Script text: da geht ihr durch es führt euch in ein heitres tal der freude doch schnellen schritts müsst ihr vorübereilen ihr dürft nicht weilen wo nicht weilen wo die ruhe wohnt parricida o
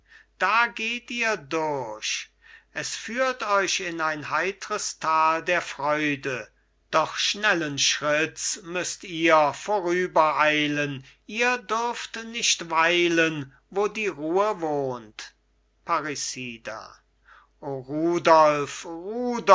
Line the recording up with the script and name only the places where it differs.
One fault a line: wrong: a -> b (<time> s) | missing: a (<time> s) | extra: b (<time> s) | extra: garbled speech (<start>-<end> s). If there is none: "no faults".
missing: nicht weilen wo (13.9 s)